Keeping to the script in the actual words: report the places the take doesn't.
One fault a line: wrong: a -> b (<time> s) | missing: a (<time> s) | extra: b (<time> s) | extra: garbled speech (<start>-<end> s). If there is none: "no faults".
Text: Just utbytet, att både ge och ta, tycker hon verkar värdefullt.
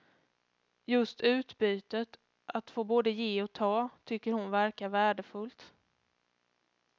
extra: få (2.7 s)